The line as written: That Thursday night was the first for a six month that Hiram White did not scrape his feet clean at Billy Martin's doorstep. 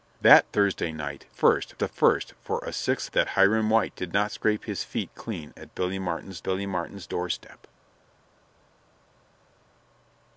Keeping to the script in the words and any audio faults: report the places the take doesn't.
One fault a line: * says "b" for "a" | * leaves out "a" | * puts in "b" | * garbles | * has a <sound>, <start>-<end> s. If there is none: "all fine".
* says "first" for "was"
* leaves out "month"
* puts in "Billy Martin's"